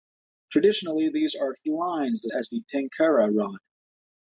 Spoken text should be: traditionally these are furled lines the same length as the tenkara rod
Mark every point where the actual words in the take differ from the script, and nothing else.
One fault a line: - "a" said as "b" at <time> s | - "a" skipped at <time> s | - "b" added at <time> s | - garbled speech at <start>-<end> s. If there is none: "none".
- "furled" skipped at 1.5 s
- "same length" skipped at 2.3 s